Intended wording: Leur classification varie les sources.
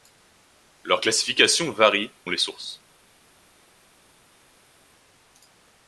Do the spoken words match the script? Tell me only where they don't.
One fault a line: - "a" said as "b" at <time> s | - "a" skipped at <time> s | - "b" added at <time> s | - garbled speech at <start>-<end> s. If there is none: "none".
none